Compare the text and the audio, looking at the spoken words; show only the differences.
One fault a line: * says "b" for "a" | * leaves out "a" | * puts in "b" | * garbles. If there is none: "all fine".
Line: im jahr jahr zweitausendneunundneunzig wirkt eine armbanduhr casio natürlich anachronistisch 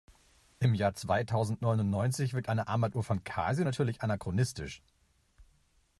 * leaves out "jahr"
* puts in "von"